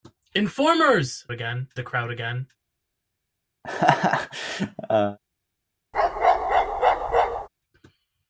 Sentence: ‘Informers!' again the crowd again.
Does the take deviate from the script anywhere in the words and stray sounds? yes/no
yes